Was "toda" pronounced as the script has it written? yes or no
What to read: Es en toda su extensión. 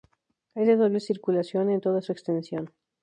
yes